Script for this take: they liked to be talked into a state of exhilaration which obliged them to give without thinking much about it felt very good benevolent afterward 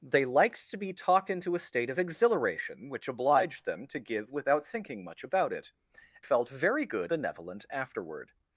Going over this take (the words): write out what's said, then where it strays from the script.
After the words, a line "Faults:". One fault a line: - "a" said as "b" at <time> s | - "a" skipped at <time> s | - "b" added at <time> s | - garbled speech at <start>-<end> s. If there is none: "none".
they liked to be talked into a state of exhilaration which obliged them to give without thinking much about it felt very good benevolent afterward
Faults:
none